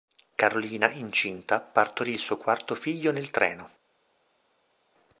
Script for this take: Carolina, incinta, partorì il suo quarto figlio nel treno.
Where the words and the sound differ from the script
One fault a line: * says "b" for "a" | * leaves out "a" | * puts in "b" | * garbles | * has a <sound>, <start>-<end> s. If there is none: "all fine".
all fine